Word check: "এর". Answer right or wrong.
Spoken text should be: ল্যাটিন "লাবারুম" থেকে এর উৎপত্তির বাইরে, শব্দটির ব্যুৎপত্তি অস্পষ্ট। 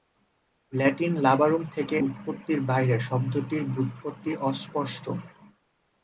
wrong